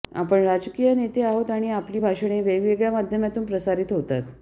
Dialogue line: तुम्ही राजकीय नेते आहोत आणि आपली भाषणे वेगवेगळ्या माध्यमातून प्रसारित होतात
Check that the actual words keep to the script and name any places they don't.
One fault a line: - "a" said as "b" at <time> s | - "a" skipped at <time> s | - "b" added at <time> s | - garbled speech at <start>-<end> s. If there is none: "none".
- "तुम्ही" said as "आपण" at 0.1 s